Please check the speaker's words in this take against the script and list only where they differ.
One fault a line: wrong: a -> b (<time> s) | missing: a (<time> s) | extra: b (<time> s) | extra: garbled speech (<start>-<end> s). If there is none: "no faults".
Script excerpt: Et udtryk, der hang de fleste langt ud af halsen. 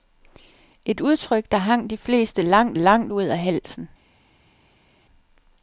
extra: langt (2.7 s)